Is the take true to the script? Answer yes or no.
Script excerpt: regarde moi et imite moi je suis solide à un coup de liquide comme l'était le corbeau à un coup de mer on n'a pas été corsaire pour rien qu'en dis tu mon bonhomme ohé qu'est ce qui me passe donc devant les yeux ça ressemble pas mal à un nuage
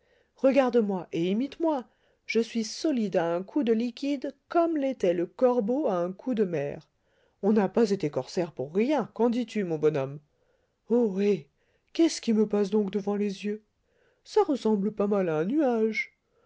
yes